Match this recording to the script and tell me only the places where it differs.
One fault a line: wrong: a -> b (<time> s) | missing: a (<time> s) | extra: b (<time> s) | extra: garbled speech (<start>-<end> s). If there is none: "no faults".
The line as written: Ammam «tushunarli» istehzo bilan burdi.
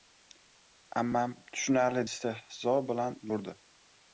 no faults